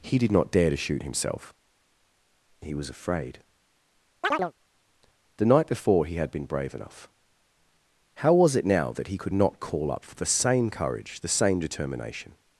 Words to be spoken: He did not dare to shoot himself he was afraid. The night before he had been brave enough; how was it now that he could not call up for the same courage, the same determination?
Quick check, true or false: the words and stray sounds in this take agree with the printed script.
false